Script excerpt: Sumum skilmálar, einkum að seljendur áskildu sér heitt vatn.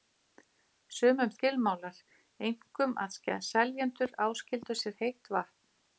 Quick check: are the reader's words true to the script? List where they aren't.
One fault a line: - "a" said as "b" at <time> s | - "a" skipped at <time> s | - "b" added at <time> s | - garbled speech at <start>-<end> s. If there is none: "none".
none